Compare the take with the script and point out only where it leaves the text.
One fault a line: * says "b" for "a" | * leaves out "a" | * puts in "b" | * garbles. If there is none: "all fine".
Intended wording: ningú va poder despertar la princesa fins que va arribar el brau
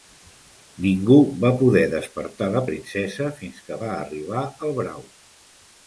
all fine